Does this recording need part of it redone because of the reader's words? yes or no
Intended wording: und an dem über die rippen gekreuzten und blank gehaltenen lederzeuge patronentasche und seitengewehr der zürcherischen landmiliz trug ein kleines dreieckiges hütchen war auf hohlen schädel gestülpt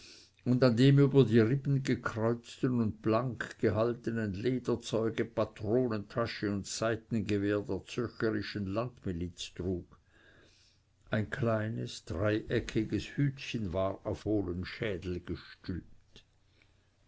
no